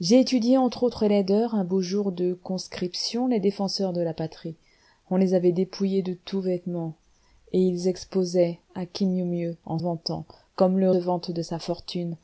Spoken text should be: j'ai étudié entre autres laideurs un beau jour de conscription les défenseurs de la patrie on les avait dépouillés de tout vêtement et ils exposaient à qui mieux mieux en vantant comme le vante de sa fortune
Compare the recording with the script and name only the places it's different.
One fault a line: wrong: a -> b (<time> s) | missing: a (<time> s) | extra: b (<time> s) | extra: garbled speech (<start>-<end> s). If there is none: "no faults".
no faults